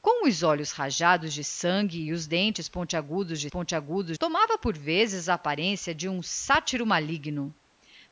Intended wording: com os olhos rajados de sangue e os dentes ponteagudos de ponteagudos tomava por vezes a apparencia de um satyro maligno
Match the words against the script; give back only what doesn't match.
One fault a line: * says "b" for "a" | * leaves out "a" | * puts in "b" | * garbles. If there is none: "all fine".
all fine